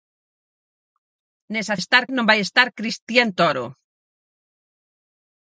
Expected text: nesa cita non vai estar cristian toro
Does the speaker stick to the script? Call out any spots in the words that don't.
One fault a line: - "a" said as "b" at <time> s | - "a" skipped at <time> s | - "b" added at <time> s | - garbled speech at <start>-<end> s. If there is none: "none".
- "cita" said as "estar" at 1.8 s